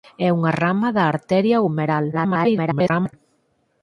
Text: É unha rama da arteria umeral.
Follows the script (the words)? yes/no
no